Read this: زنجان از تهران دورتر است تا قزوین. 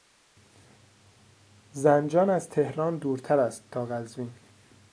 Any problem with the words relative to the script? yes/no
no